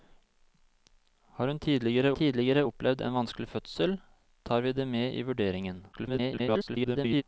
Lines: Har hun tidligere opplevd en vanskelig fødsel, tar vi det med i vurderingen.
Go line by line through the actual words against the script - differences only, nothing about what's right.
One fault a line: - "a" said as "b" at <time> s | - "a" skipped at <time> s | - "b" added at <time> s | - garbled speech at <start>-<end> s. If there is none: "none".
- "tidligere" added at 2.1 s
- garbled speech at 5.9-7.2 s